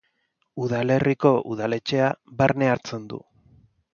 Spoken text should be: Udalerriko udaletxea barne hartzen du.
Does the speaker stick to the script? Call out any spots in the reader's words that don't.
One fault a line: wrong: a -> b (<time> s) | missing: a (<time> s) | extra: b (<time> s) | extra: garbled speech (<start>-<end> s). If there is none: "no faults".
no faults